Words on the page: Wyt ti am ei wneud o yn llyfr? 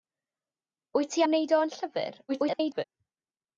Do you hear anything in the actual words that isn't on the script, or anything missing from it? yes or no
yes